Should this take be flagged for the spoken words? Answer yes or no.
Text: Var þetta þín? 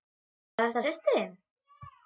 yes